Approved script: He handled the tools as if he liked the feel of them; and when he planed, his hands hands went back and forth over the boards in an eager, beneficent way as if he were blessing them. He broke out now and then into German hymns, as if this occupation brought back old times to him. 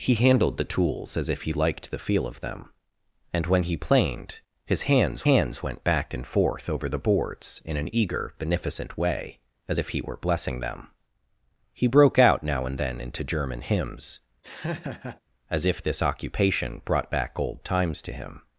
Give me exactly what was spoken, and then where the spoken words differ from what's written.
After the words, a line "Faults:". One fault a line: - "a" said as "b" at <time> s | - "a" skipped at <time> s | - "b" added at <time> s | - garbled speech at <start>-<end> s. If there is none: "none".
He handled the tools as if he liked the feel of them; and when he planed, his hands hands went back and forth over the boards in an eager, beneficent way as if he were blessing them. He broke out now and then into German hymns, as if this occupation brought back old times to him.
Faults:
none